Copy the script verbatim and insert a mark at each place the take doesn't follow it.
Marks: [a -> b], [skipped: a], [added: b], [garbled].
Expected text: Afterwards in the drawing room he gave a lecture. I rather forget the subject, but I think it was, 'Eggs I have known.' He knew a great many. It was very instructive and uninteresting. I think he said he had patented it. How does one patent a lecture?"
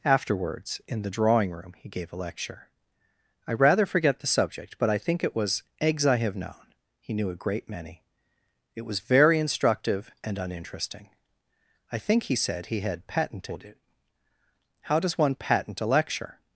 Afterwards in the drawing room he gave a lecture. I rather forget the subject, but I think it was, 'Eggs I have known.' He knew a great many. It was very instructive and uninteresting. I think he said he had patented it. How does one patent a lecture?"